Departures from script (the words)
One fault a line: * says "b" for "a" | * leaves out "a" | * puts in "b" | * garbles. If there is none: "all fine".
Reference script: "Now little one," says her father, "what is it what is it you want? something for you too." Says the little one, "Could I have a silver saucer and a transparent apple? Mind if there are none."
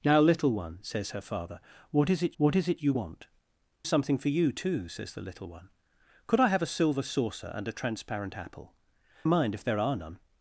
all fine